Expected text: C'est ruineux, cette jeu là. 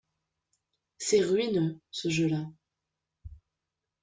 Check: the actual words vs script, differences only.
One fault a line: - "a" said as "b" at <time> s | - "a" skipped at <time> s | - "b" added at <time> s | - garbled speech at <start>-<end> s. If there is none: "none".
- "cette" said as "ce" at 1.9 s